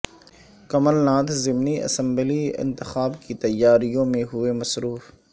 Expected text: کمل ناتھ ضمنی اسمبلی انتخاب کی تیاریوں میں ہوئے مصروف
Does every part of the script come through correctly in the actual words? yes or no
yes